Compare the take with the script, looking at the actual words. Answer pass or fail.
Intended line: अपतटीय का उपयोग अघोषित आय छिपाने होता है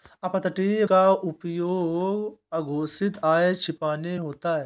pass